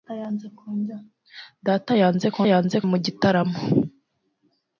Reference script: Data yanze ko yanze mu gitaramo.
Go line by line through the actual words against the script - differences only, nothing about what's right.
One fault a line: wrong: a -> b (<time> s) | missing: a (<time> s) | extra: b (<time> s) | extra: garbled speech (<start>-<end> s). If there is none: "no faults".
no faults